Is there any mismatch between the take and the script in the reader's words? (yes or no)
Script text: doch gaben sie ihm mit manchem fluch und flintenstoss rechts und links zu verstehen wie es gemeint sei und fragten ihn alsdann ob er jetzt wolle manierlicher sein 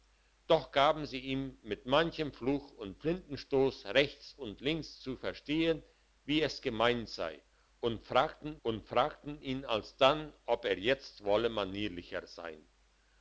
yes